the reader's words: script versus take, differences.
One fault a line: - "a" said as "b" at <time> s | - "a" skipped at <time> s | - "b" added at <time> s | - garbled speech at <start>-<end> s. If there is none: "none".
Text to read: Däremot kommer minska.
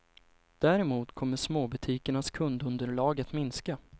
- "småbutikernas kundunderlag att" added at 1.4 s